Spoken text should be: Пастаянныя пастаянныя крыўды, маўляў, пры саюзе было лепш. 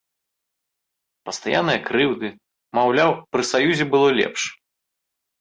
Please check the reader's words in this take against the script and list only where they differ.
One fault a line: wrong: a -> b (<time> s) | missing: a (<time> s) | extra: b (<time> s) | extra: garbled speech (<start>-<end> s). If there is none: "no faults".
missing: пастаянныя (1.8 s)